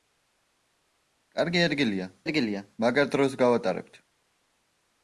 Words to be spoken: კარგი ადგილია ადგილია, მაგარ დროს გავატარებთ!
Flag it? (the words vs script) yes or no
no